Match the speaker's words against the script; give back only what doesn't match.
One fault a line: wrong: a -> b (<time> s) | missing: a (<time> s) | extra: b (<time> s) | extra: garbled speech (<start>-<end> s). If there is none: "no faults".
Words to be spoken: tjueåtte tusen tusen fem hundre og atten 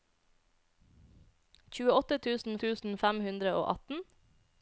no faults